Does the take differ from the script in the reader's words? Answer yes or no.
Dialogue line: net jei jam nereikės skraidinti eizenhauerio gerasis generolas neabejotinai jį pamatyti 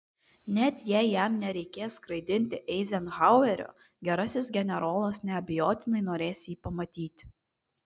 yes